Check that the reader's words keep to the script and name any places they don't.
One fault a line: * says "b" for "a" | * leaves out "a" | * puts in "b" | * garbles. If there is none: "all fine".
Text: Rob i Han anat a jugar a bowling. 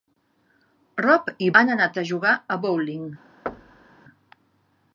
all fine